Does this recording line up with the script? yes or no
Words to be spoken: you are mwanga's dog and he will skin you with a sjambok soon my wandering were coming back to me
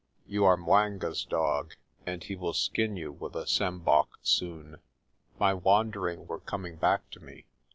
yes